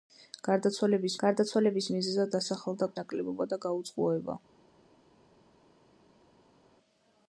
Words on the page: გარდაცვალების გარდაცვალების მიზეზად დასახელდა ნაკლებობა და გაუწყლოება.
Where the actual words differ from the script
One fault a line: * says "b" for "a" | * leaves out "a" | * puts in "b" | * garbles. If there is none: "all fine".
all fine